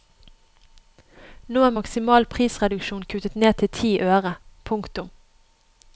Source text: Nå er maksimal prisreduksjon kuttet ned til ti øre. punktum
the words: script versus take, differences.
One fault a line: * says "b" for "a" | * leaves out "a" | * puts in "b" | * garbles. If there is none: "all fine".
all fine